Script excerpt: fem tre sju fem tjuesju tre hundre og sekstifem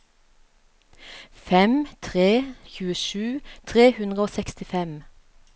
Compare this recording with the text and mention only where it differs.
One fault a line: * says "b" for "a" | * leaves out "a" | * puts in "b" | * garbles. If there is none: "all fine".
* leaves out "sju fem"